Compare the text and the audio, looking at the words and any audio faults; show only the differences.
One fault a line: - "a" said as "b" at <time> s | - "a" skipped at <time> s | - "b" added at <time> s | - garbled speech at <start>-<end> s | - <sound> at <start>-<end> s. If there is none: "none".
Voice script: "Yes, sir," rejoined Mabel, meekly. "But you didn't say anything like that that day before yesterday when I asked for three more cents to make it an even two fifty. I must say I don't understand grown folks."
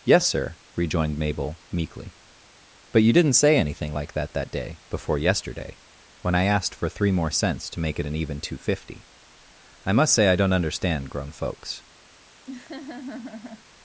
- laugh at 12.5-13.7 s